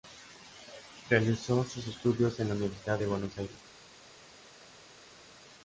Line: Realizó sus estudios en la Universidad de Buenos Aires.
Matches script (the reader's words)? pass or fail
pass